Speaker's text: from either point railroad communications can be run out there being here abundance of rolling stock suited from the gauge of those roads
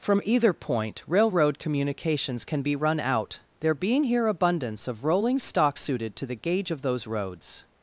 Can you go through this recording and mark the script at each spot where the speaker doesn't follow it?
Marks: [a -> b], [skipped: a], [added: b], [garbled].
from either point railroad communications can be run out there being here abundance of rolling stock suited [from -> to] the gauge of those roads